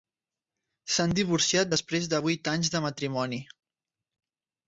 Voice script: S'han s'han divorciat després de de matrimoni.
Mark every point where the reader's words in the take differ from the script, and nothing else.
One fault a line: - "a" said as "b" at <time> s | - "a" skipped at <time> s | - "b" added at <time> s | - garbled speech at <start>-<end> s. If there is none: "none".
- "s'han" skipped at 1.1 s
- "vuit anys" added at 2.3 s